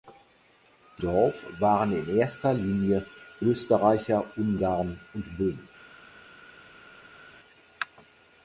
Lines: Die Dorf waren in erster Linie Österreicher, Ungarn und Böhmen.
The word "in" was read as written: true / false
true